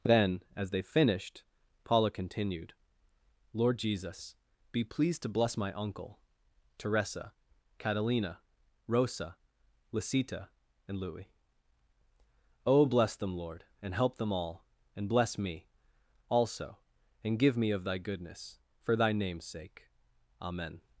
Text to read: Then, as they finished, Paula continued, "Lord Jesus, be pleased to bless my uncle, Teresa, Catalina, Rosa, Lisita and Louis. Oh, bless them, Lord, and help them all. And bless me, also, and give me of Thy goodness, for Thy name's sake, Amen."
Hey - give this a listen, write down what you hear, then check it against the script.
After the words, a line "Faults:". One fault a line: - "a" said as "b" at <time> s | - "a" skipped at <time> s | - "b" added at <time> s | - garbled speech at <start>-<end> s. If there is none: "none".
Then, as they finished, Paula continued, "Lord Jesus, be pleased to bless my uncle, Teresa, Catalina, Rosa, Lisita and Louis. Oh, bless them, Lord, and help them all. And bless me, also, and give me of Thy goodness, for Thy name's sake, Amen."
Faults:
none